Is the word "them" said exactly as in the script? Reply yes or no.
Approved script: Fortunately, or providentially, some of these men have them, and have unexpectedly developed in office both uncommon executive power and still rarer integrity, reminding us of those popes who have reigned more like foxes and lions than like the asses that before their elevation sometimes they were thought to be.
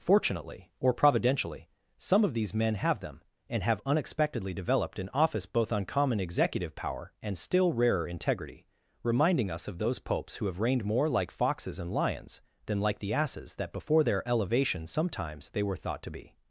yes